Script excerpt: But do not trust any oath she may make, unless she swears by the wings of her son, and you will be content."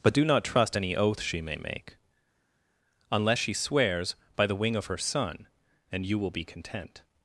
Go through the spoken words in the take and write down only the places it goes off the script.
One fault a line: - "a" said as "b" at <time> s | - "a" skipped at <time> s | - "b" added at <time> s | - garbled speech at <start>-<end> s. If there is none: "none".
- "wings" said as "wing" at 4.6 s